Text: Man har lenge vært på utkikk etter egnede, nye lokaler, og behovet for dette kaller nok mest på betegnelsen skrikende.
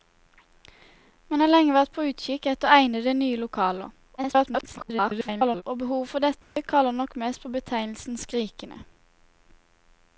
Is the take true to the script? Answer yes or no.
no